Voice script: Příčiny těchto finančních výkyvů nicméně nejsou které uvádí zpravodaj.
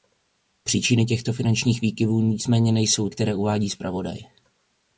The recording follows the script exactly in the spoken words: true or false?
true